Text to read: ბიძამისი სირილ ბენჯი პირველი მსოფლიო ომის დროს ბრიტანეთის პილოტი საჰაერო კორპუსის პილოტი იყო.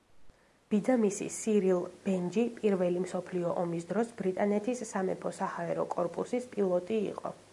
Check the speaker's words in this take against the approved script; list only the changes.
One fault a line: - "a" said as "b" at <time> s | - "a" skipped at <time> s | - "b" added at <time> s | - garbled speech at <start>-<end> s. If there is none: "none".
- "პილოტი" said as "სამეფო" at 4.9 s